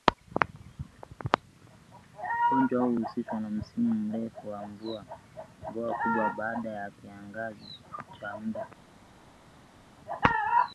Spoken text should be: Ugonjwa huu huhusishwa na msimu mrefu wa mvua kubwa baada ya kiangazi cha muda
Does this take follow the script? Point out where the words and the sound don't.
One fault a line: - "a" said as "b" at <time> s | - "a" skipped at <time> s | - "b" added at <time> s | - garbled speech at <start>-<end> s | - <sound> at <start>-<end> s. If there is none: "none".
none